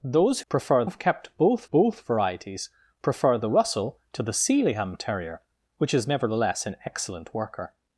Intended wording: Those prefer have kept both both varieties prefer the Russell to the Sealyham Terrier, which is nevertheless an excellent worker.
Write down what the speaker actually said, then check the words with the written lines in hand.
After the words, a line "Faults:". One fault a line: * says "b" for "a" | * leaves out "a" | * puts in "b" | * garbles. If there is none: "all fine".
Those prefer have kept both both varieties prefer the Russell to the Sealyham Terrier, which is nevertheless an excellent worker.
Faults:
all fine